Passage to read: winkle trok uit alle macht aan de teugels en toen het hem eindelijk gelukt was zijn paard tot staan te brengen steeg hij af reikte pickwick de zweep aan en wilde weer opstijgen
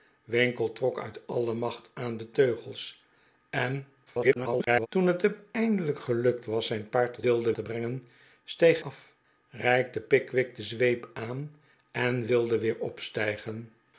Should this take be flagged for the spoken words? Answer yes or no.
yes